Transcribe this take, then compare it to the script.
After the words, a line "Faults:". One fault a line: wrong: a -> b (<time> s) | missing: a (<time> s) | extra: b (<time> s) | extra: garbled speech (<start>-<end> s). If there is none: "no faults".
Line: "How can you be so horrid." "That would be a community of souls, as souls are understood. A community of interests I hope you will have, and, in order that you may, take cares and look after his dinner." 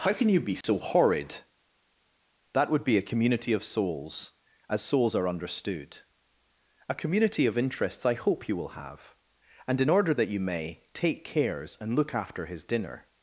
"How can you be so horrid." "That would be a community of souls, as souls are understood. A community of interests I hope you will have, and, in order that you may, take cares and look after his dinner."
Faults:
no faults